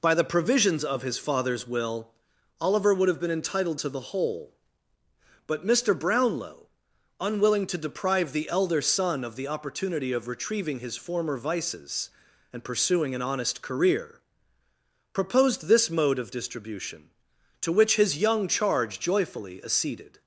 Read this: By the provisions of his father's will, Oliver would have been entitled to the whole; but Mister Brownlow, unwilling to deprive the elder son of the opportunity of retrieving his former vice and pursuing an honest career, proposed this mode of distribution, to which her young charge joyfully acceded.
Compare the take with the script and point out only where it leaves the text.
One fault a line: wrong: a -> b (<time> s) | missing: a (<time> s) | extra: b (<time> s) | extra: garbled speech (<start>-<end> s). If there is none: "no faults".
wrong: vice -> vices (11.4 s)
wrong: her -> his (18.0 s)